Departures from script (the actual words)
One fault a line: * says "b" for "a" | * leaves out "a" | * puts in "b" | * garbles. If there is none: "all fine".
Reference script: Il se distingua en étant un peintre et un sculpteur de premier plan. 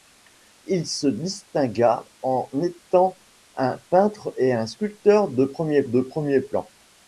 * puts in "de premier"